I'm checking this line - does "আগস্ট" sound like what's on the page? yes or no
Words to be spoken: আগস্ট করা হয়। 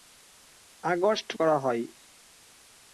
yes